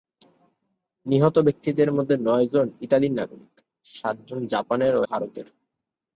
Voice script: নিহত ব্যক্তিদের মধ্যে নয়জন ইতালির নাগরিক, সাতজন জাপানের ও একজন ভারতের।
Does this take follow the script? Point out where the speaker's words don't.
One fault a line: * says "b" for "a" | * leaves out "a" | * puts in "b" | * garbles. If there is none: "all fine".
* leaves out "একজন"